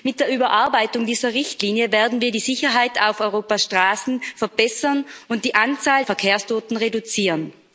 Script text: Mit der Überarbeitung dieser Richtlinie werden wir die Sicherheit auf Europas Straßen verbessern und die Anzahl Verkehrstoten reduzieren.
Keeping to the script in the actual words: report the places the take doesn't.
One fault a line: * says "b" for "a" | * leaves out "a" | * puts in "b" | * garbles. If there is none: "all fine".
all fine